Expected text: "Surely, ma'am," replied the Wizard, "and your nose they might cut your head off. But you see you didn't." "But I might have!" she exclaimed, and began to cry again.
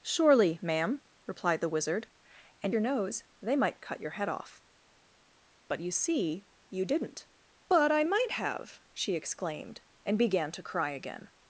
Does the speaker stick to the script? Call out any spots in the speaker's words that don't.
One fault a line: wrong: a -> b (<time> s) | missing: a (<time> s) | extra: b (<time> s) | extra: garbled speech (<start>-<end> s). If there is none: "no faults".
no faults